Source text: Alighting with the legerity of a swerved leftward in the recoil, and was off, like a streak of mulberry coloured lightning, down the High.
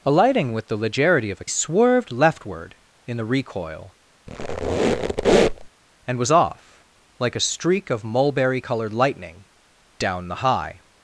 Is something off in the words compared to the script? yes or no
no